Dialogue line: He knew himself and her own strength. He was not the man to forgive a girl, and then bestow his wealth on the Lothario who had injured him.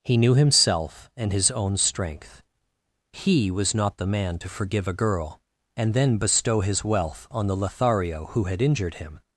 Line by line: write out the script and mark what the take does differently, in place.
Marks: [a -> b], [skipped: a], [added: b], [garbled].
He knew himself and [her -> his] own strength. He was not the man to forgive a girl, and then bestow his wealth on the Lothario who had injured him.